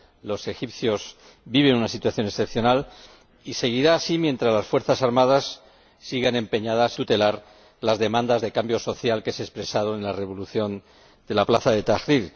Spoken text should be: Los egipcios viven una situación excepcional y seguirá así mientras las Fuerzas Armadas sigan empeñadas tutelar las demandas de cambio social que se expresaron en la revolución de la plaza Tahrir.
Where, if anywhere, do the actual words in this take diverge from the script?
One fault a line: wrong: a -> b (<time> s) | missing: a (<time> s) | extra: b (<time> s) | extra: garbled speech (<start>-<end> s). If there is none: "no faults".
no faults